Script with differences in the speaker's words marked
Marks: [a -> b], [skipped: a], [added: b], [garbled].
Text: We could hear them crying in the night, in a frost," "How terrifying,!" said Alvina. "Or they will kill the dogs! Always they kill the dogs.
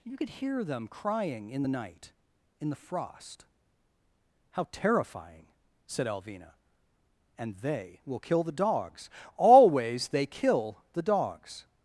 [We -> You] could hear them crying in the night, in [a -> the] frost," "How terrifying,!" said Alvina. ["Or -> And] they will kill the dogs! Always they kill the dogs.